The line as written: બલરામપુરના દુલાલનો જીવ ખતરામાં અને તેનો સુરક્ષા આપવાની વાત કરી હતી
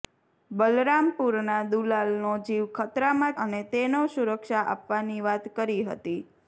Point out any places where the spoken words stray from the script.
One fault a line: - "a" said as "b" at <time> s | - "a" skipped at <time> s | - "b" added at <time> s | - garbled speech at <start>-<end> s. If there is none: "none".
none